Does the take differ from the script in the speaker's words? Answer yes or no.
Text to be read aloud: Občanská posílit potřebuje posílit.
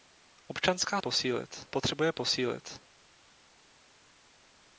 no